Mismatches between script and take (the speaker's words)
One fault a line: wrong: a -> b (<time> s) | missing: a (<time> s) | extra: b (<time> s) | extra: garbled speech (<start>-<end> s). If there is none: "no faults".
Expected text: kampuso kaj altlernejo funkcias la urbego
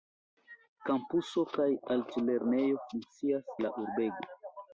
no faults